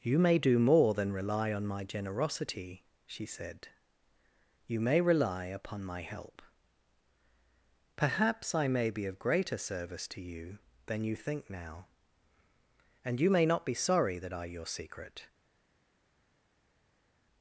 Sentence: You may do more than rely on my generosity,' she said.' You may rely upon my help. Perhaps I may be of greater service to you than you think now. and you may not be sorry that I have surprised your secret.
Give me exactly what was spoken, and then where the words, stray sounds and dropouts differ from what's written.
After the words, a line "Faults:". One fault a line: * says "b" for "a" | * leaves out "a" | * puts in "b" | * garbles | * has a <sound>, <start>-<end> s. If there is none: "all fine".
You may do more than rely on my generosity,' she said.' You may rely upon my help. Perhaps I may be of greater service to you than you think now. and you may not be sorry that I your secret.
Faults:
* leaves out "have surprised"